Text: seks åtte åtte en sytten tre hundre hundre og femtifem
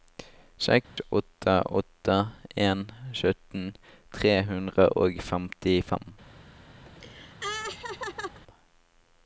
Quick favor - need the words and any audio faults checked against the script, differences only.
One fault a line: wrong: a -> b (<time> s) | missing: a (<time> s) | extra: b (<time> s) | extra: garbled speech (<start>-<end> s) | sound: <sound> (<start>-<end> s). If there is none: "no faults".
sound: dropout (0.8-1.0 s)
missing: hundre (4.9 s)
sound: laugh (6.9-8.4 s)